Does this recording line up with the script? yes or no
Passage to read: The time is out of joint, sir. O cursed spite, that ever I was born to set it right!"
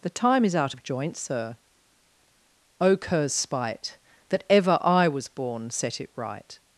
no